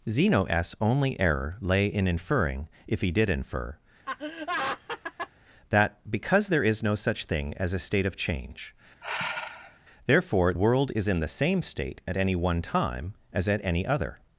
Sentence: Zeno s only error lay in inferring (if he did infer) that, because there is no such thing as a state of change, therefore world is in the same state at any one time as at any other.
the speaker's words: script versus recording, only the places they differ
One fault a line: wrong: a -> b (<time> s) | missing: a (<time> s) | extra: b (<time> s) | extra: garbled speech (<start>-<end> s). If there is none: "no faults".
no faults